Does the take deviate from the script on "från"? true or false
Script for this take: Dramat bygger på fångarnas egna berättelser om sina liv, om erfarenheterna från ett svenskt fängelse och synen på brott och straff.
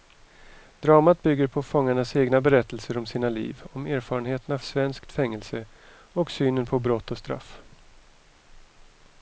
true